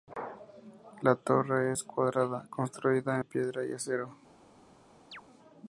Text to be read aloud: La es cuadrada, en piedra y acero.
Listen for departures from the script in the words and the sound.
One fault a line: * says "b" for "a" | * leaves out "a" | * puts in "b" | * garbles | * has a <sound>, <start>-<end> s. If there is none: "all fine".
* puts in "torre"
* puts in "construida"
* has a chirp, 5.1-5.2 s